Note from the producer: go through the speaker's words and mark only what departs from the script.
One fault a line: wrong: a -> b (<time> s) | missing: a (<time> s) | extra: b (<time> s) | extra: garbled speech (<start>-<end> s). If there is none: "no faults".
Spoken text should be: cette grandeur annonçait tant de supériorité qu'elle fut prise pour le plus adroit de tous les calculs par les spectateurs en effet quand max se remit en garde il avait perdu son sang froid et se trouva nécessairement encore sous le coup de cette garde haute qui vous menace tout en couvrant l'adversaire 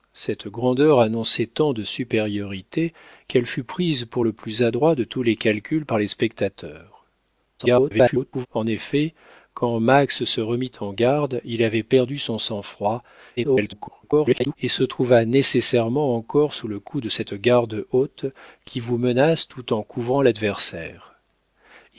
extra: garbled speech (7.6-8.5 s)
extra: garbled speech (13.4-14.6 s)